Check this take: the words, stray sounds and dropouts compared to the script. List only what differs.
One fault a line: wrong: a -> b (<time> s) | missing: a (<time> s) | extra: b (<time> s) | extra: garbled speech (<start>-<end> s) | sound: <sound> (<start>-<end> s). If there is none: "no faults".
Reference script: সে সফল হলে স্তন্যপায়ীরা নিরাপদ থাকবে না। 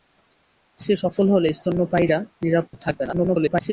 sound: dropout (2.7-2.7 s)
extra: garbled speech (3.1-3.7 s)